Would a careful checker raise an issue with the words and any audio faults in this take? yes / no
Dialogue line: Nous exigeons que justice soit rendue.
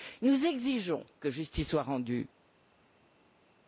no